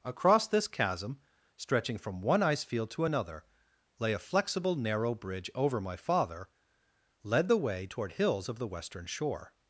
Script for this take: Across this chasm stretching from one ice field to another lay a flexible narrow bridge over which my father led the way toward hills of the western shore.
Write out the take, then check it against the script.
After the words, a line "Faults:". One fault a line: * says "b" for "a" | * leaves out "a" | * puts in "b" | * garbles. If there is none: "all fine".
Across this chasm stretching from one ice field to another lay a flexible narrow bridge over my father led the way toward hills of the western shore.
Faults:
* leaves out "which"